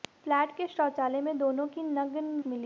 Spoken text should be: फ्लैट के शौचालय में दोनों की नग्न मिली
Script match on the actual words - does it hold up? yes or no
yes